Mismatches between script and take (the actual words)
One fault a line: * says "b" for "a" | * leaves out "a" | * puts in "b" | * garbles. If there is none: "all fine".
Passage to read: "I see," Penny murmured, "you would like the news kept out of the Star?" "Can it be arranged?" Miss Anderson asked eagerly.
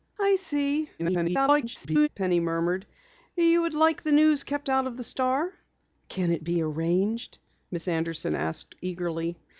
* garbles